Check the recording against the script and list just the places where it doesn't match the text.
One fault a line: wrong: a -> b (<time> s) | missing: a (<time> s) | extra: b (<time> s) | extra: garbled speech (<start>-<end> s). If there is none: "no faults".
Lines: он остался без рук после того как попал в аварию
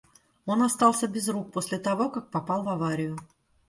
no faults